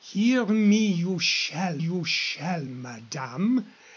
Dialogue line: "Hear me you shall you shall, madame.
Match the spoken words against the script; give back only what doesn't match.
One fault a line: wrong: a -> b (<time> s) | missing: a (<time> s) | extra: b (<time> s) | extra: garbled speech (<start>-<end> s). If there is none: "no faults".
no faults